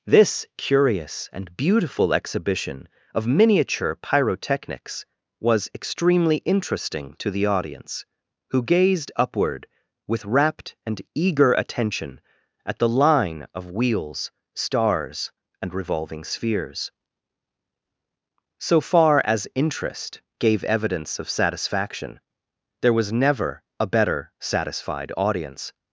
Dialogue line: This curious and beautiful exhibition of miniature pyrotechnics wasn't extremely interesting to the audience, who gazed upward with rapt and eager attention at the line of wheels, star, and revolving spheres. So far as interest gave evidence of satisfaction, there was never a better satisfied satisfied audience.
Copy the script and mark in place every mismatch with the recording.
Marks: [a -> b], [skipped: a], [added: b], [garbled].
This curious and beautiful exhibition of miniature pyrotechnics [wasn't -> was] extremely interesting to the audience, who gazed upward with rapt and eager attention at the line of wheels, [star, -> stars] and revolving spheres. So far as interest gave evidence of satisfaction, there was never a better satisfied [skipped: satisfied] audience.